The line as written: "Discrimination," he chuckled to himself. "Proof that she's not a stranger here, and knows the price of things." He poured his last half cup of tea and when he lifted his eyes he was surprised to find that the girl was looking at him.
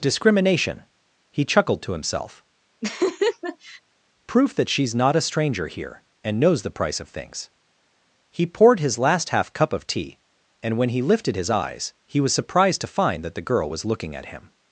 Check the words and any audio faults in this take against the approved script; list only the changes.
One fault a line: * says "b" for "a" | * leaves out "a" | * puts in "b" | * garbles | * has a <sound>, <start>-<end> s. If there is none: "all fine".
* has a laugh, 2.8-3.8 s